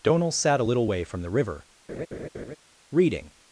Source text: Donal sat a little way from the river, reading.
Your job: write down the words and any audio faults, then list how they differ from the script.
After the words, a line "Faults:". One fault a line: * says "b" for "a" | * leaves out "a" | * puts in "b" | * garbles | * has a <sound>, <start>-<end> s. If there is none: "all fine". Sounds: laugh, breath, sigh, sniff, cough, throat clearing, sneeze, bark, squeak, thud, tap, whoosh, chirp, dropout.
Donal sat a little way from the river, reading.
Faults:
* has a laugh, 1.9-2.6 s